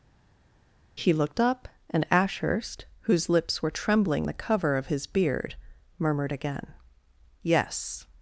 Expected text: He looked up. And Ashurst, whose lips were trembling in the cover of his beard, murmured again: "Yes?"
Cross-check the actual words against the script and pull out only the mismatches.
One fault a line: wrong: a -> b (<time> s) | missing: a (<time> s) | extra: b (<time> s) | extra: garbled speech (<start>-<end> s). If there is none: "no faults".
missing: in (4.3 s)